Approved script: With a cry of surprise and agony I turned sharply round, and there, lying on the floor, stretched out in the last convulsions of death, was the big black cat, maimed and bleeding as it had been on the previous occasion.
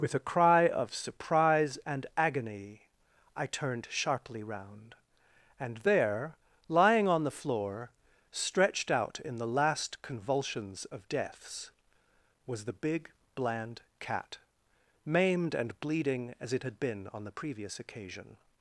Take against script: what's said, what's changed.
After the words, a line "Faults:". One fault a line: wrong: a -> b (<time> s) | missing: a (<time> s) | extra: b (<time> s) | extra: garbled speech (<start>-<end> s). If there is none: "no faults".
With a cry of surprise and agony I turned sharply round, and there, lying on the floor, stretched out in the last convulsions of deaths, was the big bland cat, maimed and bleeding as it had been on the previous occasion.
Faults:
wrong: death -> deaths (11.1 s)
wrong: black -> bland (13.3 s)